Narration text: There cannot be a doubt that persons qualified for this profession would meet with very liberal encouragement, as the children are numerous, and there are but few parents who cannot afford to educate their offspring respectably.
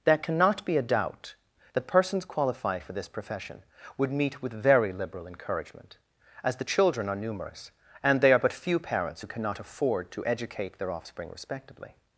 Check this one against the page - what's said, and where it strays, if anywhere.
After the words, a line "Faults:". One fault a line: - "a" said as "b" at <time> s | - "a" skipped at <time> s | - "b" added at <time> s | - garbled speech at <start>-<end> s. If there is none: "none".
There cannot be a doubt that persons qualified for this profession would meet with very liberal encouragement, as the children are numerous, and they are but few parents who cannot afford to educate their offspring respectably.
Faults:
- "there" said as "they" at 8.2 s